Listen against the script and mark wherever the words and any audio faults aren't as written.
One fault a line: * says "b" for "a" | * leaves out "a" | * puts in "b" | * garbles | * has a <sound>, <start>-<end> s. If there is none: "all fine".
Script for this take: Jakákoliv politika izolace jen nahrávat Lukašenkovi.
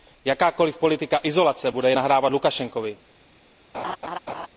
* puts in "bude"
* has a laugh, 3.7-4.5 s